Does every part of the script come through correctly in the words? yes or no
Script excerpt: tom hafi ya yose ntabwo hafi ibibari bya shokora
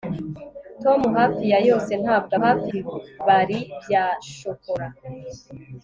yes